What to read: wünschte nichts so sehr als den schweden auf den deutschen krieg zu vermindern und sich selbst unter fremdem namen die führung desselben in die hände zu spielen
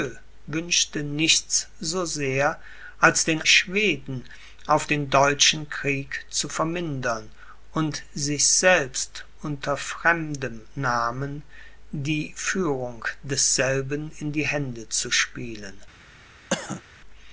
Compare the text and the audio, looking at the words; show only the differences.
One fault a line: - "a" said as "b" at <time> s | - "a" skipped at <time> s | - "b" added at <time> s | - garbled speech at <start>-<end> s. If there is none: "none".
none